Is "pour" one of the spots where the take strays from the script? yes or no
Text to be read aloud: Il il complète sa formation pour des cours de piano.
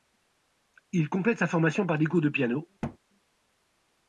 yes